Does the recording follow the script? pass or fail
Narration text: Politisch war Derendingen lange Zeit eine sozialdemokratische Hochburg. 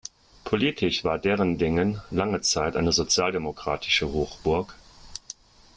pass